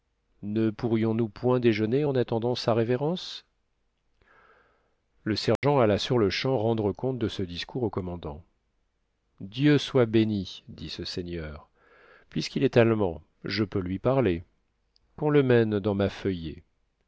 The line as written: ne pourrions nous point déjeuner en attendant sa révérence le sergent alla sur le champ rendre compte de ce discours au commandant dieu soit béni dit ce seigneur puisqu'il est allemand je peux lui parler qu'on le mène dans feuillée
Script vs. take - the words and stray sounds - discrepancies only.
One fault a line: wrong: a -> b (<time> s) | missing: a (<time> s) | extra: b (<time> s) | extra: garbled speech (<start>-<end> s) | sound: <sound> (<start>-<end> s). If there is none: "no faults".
sound: dropout (5.6-5.6 s)
extra: ma (15.9 s)